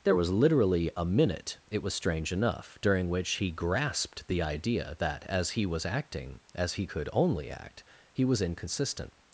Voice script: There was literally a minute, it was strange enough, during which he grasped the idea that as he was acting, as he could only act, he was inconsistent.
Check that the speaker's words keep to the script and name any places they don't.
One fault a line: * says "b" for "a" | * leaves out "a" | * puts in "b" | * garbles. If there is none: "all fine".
all fine